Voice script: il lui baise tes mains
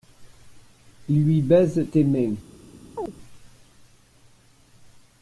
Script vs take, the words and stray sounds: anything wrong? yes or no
yes